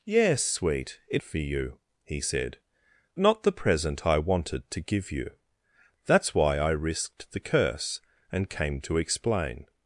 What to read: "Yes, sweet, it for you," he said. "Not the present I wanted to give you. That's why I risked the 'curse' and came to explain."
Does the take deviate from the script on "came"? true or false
false